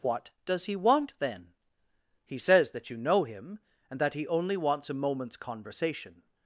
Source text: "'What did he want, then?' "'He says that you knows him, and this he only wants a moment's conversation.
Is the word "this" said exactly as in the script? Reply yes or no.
no